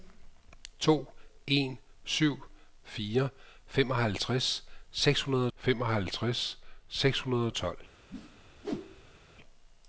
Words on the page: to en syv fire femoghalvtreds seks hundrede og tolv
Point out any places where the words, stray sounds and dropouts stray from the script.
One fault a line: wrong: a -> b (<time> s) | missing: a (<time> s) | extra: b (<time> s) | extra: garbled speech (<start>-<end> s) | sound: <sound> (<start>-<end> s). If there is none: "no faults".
extra: femoghalvtreds seks hundrede (5.5 s)
sound: whoosh (8.1-9.2 s)